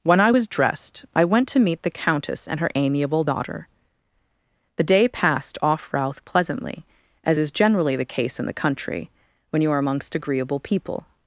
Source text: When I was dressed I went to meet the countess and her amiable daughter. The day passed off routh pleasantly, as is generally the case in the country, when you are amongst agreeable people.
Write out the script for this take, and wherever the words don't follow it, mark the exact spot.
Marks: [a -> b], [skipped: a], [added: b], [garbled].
When I was dressed I went to meet the countess and her amiable daughter. The day passed off routh pleasantly, as is generally the case in the country, when you are amongst agreeable people.